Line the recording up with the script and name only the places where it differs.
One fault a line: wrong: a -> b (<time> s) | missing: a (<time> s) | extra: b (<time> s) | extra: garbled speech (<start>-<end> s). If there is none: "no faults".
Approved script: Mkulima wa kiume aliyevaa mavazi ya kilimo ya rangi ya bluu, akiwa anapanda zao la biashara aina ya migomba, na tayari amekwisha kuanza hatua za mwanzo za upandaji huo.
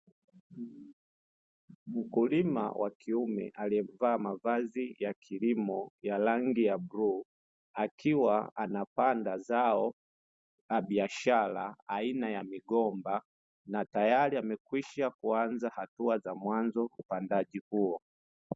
missing: za (16.9 s)